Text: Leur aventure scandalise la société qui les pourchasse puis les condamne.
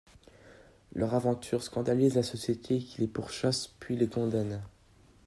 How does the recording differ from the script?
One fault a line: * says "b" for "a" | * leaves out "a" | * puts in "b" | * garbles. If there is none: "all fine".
all fine